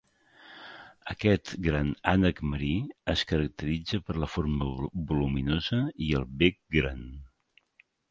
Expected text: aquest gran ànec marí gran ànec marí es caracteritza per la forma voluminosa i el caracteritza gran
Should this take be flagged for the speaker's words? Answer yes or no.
yes